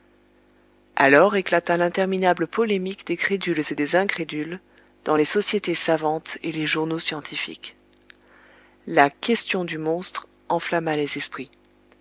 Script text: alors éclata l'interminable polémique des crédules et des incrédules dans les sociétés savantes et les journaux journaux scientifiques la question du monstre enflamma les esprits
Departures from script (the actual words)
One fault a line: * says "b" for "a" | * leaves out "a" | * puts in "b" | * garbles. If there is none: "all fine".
* leaves out "journaux"